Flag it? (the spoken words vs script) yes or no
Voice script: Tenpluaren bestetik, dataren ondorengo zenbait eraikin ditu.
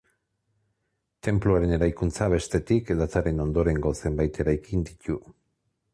yes